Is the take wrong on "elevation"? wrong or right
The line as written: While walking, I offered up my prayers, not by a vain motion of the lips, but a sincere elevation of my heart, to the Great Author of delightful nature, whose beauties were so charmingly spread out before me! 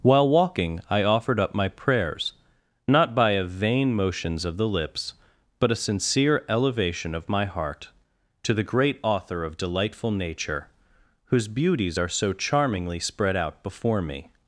right